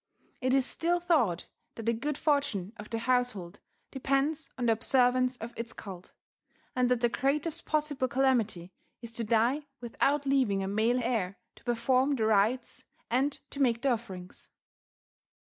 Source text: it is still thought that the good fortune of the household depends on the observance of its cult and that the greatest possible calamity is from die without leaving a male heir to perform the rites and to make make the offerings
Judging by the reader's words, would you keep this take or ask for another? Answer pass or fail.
fail